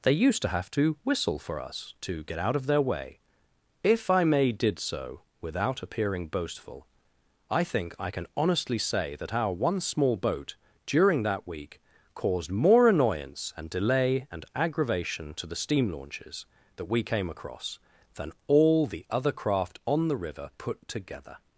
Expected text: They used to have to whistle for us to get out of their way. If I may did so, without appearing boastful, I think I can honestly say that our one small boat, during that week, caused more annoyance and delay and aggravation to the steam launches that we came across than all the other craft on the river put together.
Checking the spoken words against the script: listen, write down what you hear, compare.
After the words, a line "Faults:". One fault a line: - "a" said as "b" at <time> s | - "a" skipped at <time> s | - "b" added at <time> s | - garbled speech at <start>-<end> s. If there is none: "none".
They used to have to whistle for us to get out of their way. If I may did so, without appearing boastful, I think I can honestly say that our one small boat, during that week, caused more annoyance and delay and aggravation to the steam launches that we came across than all the other craft on the river put together.
Faults:
none